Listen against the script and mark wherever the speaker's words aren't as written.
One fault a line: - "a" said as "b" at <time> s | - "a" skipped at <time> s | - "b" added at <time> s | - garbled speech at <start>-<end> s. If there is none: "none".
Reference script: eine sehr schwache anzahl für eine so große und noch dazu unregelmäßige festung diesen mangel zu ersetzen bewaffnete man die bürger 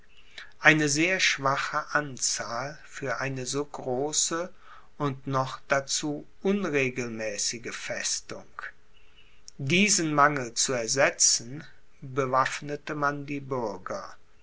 none